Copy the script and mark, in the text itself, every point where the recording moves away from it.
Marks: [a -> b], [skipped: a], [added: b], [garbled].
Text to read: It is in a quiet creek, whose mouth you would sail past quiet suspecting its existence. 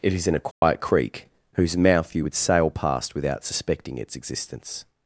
It is in a quiet creek, whose mouth you would sail past [quiet -> without] suspecting its existence.